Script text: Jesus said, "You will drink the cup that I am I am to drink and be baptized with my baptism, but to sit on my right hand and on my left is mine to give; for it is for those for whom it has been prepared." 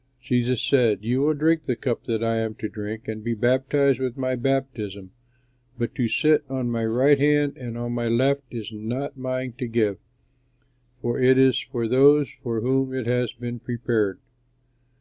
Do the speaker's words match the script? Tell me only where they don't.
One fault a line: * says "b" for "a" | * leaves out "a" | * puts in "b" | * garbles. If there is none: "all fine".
* leaves out "I am"
* puts in "not"